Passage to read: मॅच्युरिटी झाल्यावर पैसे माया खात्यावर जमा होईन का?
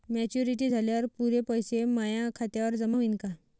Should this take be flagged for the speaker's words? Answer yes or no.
yes